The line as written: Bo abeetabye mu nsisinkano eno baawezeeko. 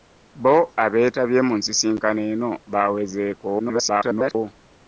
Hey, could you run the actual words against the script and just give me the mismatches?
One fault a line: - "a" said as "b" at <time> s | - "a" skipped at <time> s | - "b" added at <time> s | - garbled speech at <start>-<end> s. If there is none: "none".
- garbled speech at 3.6-4.4 s